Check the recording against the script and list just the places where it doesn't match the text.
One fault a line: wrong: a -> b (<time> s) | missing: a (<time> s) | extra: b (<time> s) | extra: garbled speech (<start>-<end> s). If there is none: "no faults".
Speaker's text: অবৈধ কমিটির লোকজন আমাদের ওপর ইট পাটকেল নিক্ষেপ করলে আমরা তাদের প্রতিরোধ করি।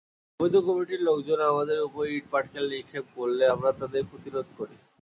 no faults